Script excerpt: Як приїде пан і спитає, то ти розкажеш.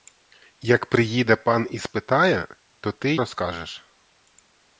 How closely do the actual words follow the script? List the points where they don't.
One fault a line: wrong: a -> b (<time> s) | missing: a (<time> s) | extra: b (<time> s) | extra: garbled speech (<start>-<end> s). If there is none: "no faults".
no faults